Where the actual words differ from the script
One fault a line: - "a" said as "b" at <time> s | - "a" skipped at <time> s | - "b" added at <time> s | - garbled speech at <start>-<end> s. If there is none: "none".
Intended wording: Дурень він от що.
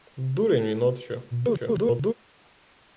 - garbled speech at 1.3-2.1 s